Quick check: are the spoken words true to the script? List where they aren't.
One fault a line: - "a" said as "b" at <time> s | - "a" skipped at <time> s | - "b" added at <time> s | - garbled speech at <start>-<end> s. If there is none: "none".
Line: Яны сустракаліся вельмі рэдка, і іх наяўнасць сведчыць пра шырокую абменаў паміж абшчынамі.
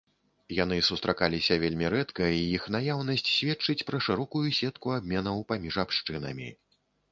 - "сетку" added at 4.6 s